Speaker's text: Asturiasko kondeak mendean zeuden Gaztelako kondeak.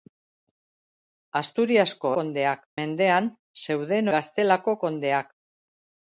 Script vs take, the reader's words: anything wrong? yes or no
no